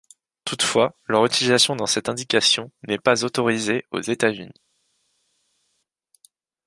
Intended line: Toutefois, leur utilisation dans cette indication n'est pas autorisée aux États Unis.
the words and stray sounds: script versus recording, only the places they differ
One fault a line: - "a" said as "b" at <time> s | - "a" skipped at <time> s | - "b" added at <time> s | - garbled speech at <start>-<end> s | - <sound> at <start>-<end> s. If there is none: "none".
none